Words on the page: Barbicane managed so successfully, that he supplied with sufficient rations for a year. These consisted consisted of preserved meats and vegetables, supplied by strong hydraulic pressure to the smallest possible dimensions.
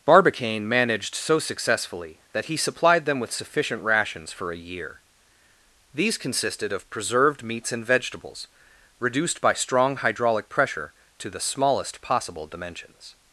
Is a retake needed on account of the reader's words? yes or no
yes